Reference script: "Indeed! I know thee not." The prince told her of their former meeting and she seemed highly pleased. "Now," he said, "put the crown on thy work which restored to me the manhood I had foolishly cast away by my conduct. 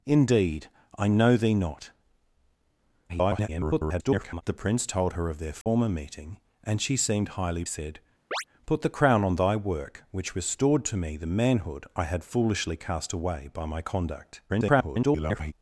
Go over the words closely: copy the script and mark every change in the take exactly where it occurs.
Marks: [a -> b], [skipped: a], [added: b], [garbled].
"Indeed! I know thee not." [garbled] The prince told her of their former meeting and she seemed highly [skipped: pleased. "Now," he] said, "put the crown on thy work which restored to me the manhood I had foolishly cast away by my conduct. [garbled]